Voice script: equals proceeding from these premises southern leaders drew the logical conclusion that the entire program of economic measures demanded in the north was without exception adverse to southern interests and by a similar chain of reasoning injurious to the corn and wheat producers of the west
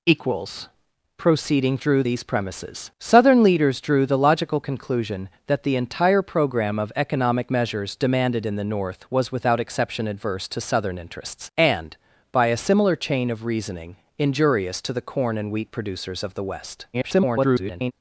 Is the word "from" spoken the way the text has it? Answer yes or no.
no